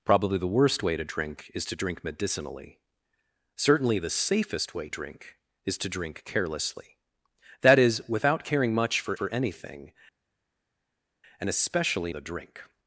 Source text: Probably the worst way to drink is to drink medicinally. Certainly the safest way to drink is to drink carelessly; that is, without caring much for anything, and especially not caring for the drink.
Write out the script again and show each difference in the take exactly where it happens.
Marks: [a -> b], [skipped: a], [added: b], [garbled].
Probably the worst way to drink is to drink medicinally. Certainly the safest way [skipped: to] drink is to drink carelessly; that is, without caring much for [added: for] anything, and especially [skipped: not caring for] the drink.